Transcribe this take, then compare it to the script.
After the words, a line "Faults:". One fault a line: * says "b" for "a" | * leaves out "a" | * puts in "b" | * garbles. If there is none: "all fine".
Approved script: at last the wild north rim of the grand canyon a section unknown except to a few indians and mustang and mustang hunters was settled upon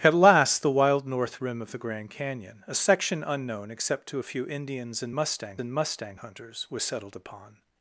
at last the wild north rim of the grand canyon a section unknown except to a few indians and mustang and mustang hunters was settled upon
Faults:
all fine